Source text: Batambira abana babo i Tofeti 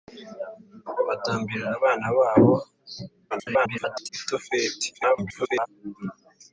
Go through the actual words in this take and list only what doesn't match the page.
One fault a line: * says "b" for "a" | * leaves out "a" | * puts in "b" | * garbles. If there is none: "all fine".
* garbles
* garbles